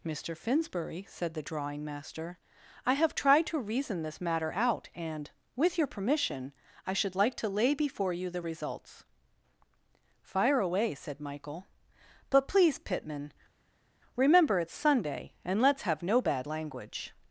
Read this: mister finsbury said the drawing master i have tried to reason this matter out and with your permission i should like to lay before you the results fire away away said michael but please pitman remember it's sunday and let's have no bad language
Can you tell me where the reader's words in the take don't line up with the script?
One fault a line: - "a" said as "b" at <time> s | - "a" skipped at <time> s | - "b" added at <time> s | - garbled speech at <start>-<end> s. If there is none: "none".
- "away" skipped at 11.0 s